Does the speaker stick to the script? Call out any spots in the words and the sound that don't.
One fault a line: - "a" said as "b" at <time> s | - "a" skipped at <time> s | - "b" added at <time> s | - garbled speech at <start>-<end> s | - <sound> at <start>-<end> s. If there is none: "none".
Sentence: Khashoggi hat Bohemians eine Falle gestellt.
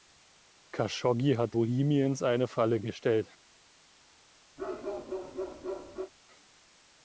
- bark at 4.6-6.1 s